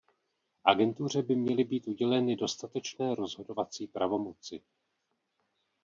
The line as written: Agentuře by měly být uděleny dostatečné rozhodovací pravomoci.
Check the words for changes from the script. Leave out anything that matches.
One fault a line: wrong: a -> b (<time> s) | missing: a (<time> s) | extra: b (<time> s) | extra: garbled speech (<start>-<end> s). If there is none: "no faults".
no faults